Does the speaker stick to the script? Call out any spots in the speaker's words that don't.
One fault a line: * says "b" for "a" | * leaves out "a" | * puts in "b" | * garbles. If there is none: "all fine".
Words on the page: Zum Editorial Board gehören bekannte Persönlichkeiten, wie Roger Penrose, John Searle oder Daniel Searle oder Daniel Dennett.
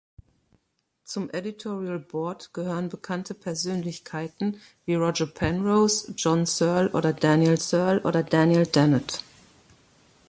all fine